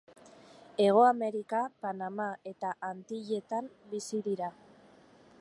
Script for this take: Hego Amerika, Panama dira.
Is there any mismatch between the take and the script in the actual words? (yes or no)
yes